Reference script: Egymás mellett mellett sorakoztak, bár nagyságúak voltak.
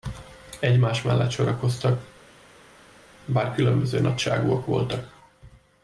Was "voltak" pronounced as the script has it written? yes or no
yes